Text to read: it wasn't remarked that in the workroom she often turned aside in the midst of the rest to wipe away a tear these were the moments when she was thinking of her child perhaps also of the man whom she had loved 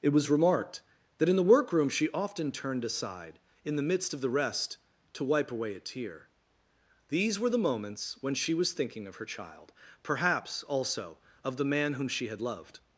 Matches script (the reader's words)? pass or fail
fail